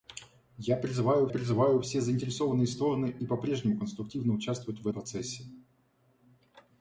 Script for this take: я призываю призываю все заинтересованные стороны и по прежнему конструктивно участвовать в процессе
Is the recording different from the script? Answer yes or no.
no